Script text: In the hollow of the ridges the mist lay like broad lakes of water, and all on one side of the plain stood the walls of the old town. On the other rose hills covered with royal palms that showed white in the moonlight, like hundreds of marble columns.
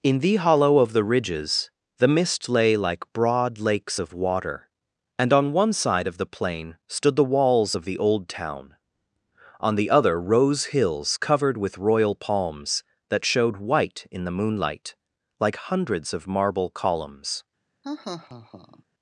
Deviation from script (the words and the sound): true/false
true